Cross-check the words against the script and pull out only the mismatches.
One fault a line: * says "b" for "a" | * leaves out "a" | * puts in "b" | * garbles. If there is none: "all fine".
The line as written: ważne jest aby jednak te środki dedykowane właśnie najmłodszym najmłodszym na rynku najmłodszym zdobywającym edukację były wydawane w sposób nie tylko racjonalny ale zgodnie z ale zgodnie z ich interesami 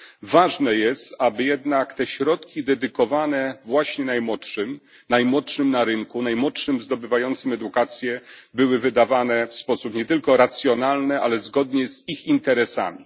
* leaves out "ale zgodnie z"